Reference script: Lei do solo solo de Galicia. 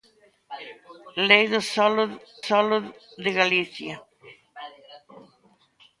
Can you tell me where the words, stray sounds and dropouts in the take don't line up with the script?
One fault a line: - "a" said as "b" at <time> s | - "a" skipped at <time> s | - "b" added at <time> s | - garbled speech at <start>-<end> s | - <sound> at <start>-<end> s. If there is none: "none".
none